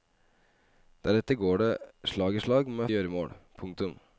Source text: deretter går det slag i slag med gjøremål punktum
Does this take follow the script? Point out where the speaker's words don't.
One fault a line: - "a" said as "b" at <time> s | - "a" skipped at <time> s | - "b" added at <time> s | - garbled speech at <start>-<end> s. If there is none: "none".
none